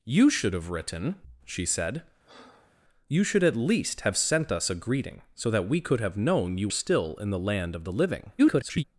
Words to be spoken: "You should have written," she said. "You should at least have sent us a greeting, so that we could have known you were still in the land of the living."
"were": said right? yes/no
no